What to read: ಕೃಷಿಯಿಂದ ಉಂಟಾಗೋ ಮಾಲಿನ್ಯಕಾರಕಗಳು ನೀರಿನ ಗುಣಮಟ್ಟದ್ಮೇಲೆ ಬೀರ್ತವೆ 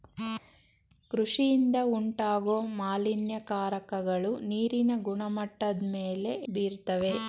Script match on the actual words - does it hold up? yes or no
yes